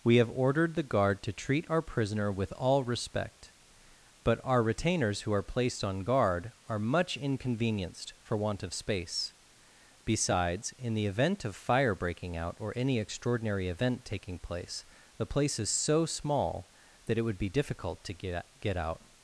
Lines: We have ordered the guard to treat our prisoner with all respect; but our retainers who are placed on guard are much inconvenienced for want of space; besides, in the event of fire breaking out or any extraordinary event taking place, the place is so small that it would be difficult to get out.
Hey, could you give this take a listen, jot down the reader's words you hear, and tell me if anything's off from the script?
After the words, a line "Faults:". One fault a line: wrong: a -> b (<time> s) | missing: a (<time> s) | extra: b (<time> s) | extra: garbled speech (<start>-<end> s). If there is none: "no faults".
We have ordered the guard to treat our prisoner with all respect; but our retainers who are placed on guard are much inconvenienced for want of space; besides, in the event of fire breaking out or any extraordinary event taking place, the place is so small that it would be difficult to get get out.
Faults:
extra: get (18.6 s)